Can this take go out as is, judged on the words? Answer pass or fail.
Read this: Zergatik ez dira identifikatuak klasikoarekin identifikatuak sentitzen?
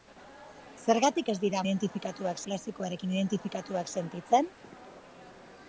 pass